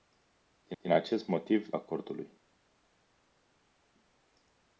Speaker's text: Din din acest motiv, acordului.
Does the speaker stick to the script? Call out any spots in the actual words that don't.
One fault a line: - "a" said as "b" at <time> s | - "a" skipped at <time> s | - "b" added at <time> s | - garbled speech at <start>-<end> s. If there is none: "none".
none